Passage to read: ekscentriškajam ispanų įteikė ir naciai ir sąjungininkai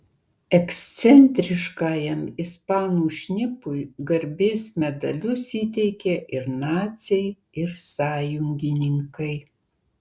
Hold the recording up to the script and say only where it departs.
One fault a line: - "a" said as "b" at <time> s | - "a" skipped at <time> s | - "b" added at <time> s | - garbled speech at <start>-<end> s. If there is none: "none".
- "šnipui garbės medalius" added at 3.2 s